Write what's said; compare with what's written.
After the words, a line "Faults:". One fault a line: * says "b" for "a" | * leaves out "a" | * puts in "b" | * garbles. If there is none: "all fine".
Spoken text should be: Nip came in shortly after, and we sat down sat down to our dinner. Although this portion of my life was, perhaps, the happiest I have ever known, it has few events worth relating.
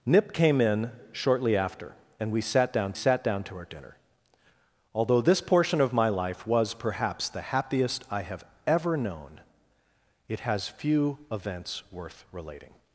Nip came in shortly after, and we sat down sat down to our dinner. Although this portion of my life was, perhaps, the happiest I have ever known, it has few events worth relating.
Faults:
all fine